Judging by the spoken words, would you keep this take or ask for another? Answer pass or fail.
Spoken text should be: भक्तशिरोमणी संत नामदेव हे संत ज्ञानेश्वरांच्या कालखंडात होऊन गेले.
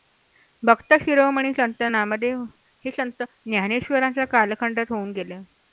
pass